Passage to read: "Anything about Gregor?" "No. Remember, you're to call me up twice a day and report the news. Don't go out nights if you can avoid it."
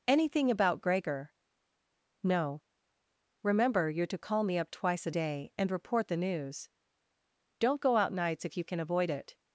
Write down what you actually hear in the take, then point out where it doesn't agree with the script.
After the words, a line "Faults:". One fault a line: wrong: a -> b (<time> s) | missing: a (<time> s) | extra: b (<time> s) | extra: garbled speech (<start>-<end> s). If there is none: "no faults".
"Anything about Gregor?" "No. Remember, you're to call me up twice a day and report the news. Don't go out nights if you can avoid it."
Faults:
no faults